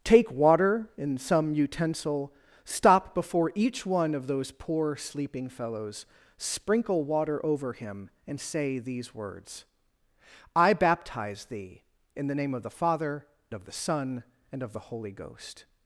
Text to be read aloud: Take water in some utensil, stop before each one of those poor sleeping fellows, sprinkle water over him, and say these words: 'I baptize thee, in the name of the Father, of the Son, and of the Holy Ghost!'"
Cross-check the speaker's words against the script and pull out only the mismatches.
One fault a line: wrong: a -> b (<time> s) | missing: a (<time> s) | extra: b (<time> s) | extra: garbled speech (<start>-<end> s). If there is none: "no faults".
no faults